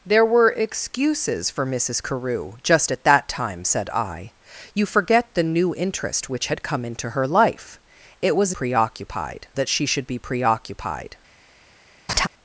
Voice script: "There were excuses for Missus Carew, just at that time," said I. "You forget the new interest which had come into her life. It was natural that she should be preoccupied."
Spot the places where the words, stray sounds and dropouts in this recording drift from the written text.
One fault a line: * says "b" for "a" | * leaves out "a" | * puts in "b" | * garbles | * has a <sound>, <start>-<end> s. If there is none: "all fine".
* says "preoccupied" for "natural"
* has a laugh, 12.1-12.3 s